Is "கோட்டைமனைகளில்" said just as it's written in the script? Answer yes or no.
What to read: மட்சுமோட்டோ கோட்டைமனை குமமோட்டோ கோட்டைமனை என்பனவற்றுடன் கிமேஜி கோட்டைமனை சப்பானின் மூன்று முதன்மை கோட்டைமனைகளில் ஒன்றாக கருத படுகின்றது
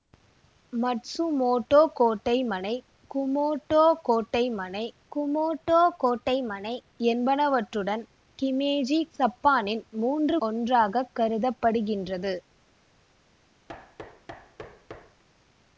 no